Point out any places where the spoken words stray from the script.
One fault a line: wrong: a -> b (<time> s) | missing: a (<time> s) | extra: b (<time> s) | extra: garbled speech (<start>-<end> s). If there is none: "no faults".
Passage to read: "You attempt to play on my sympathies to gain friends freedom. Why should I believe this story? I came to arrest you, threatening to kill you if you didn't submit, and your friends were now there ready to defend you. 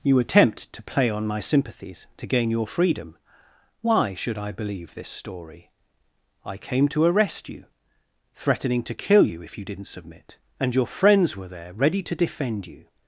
wrong: friends -> your (2.5 s)
missing: now (11.5 s)